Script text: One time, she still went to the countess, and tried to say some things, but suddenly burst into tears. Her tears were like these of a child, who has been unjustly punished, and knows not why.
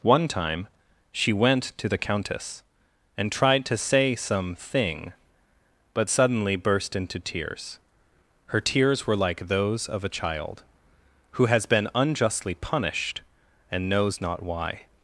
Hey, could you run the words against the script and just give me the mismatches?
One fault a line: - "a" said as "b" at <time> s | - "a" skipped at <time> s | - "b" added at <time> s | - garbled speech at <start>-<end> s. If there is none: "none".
- "still" skipped at 1.3 s
- "things" said as "thing" at 4.5 s
- "these" said as "those" at 9.5 s